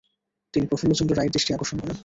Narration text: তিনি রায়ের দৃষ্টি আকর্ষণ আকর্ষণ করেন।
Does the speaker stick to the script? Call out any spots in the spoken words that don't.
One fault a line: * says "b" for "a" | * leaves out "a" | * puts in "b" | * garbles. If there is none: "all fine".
* puts in "প্রফুল্লচন্দ্র"
* leaves out "আকর্ষণ"